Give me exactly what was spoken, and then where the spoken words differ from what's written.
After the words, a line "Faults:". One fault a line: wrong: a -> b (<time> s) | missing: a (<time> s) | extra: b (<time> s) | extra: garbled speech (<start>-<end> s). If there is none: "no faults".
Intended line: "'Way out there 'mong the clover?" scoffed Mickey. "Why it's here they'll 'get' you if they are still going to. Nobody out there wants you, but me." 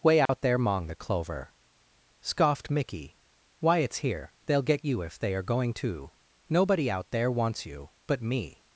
"'Way out there 'mong the clover?" scoffed Mickey. "Why it's here they'll 'get' you if they are going to. Nobody out there wants you, but me."
Faults:
missing: still (5.4 s)